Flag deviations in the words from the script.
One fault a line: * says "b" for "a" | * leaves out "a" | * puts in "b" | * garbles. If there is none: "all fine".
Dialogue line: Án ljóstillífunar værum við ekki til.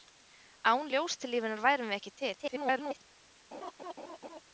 * garbles